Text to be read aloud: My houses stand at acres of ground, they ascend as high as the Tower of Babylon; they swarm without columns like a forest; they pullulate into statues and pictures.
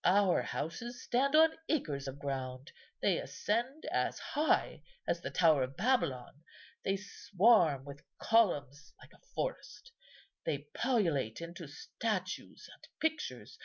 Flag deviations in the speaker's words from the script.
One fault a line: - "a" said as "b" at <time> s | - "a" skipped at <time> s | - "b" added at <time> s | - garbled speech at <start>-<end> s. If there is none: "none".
- "My" said as "Our" at 0.0 s
- "at" said as "on" at 1.4 s
- "without" said as "with" at 7.8 s